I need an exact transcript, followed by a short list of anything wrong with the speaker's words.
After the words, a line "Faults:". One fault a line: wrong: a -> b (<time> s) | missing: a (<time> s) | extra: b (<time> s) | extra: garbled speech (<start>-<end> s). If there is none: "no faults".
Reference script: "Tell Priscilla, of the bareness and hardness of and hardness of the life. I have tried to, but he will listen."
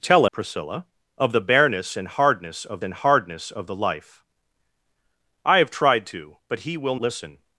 "Tell Priscilla, of the bareness and hardness of and hardness of the life. I have tried to, but he will listen."
Faults:
no faults